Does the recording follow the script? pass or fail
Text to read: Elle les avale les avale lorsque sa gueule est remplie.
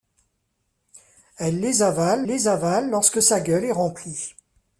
pass